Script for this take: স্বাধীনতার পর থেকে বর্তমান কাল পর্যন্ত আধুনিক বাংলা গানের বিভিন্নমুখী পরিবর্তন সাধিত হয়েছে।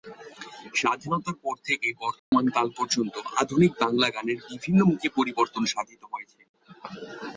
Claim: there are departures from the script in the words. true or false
false